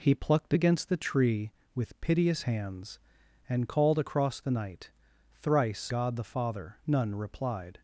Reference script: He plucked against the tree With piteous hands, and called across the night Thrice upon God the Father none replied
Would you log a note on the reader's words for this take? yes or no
yes